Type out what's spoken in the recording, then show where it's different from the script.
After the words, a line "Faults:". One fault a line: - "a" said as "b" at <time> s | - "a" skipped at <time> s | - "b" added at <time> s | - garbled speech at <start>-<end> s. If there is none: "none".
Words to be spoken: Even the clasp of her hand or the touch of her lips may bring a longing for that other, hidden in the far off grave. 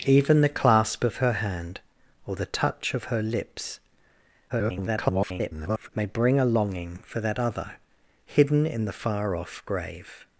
Even the clasp of her hand or the touch of her lips [garbled] may bring a longing for that other, hidden in the far off grave.
Faults:
- garbled speech at 4.5-5.9 s